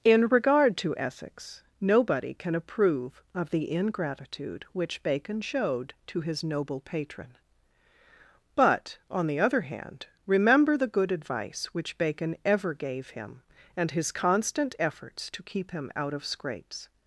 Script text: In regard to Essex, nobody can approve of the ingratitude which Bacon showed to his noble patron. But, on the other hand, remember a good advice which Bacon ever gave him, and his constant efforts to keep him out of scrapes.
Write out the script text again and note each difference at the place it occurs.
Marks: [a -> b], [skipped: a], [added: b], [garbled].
In regard to Essex, nobody can approve of the ingratitude which Bacon showed to his noble patron. But, on the other hand, remember [a -> the] good advice which Bacon ever gave him, and his constant efforts to keep him out of scrapes.